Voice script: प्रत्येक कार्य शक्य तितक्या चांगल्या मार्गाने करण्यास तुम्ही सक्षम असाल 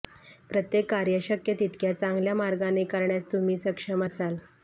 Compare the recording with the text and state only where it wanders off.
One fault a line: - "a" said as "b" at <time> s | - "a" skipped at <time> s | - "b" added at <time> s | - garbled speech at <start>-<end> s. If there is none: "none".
none